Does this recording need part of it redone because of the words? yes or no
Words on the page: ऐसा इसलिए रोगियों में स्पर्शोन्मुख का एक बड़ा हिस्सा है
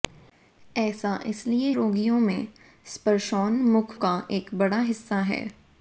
no